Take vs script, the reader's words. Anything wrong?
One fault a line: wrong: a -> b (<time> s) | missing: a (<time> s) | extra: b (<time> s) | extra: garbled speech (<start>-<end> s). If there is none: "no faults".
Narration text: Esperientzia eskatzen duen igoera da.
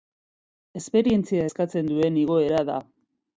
no faults